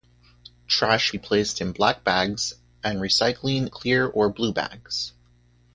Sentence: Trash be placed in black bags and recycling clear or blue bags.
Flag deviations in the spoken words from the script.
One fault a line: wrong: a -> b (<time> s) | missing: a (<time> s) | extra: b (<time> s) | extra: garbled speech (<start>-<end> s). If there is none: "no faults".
no faults